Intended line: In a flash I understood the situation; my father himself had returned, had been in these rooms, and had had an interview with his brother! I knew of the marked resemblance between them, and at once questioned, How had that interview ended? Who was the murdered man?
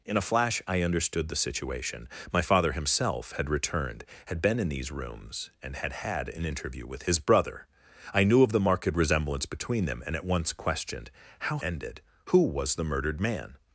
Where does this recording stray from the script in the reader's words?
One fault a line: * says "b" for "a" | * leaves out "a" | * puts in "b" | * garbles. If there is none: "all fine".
* leaves out "had that interview"